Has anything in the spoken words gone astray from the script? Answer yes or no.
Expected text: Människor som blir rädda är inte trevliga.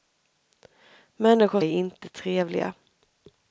yes